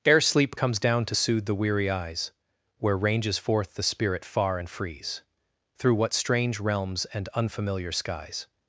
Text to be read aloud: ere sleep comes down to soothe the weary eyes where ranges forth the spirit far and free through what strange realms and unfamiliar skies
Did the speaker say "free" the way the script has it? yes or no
no